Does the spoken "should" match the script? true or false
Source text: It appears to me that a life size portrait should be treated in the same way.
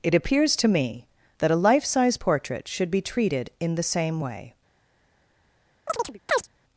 true